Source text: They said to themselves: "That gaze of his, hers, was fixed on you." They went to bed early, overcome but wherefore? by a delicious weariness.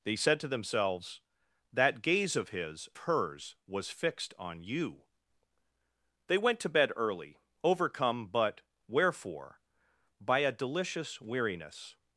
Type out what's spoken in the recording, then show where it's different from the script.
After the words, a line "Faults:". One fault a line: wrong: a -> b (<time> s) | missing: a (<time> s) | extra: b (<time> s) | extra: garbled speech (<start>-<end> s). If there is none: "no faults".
They said to themselves: "That gaze of his, hers, was fixed on you." They went to bed early, overcome but wherefore? by a delicious weariness.
Faults:
no faults